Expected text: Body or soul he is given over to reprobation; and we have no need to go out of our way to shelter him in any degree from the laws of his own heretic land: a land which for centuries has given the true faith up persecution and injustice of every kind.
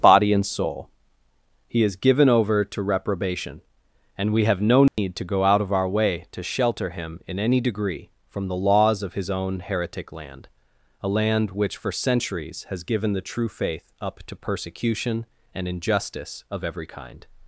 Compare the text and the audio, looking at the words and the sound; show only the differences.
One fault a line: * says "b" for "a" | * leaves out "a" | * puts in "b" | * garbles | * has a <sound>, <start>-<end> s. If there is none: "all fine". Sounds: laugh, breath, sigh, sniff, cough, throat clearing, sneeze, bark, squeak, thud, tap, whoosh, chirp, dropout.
* says "and" for "or"
* has a dropout, 4.9-5.0 s
* puts in "to"